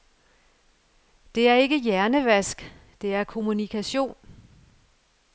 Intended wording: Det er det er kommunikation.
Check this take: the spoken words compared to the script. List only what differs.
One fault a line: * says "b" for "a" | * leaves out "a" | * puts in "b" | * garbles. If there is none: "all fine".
* puts in "ikke hjernevask"